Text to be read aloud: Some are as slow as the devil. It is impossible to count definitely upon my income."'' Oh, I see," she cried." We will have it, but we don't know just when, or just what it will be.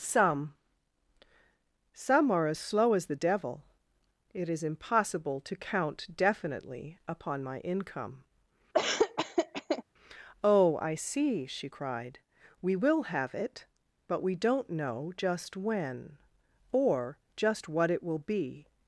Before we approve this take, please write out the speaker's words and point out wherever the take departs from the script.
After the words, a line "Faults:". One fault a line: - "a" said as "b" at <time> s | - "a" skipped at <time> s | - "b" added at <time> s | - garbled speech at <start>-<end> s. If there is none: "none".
Some some are as slow as the devil. It is impossible to count definitely upon my income."'' Oh, I see," she cried." We will have it, but we don't know just when, or just what it will be.
Faults:
- "some" added at 1.9 s